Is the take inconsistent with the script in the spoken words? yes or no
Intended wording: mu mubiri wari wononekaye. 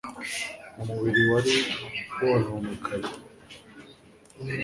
no